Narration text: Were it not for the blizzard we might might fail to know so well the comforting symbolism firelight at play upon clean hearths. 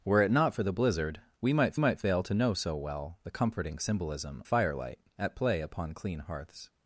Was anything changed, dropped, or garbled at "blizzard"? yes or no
no